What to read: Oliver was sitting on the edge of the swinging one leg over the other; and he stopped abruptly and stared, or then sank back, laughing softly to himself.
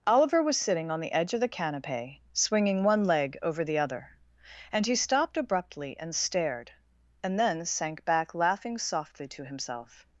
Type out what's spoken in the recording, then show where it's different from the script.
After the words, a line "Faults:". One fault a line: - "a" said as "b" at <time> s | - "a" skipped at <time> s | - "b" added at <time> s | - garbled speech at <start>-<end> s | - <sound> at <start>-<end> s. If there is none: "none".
Oliver was sitting on the edge of the canapé, swinging one leg over the other; and he stopped abruptly and stared, and then sank back, laughing softly to himself.
Faults:
- "canapé" added at 1.5 s
- "or" said as "and" at 7.2 s